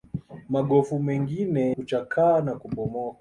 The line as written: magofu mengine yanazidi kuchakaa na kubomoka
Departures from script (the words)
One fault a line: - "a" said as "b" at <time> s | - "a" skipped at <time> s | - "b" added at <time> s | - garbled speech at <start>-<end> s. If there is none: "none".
- "yanazidi" skipped at 1.8 s